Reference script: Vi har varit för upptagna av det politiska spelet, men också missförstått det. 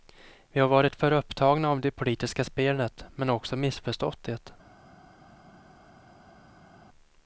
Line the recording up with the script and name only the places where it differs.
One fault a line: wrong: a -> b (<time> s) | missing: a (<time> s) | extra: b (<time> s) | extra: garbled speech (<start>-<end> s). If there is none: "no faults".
no faults